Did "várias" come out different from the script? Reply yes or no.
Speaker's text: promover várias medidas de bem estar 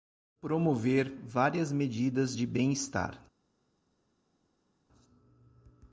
no